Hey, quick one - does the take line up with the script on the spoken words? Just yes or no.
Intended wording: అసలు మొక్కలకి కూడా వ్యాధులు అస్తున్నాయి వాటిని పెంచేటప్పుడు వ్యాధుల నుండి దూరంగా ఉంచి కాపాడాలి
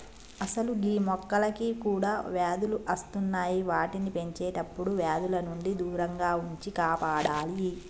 no